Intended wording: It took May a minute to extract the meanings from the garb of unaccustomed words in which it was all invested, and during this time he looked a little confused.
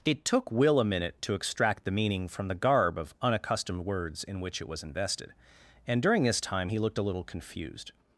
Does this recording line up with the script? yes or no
no